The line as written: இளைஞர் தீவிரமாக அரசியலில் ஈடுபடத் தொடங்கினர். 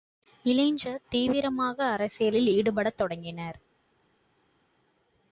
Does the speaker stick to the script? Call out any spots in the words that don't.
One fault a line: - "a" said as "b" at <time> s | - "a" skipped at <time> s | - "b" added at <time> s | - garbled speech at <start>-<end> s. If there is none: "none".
none